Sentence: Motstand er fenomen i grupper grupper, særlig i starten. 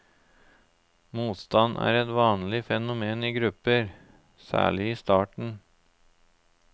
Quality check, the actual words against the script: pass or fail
fail